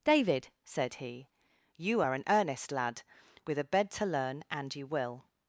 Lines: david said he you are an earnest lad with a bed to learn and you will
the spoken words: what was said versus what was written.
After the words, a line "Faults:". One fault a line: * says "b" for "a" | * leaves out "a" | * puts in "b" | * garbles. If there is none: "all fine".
david said he you are an earnest lad with a bed to learn and you will
Faults:
all fine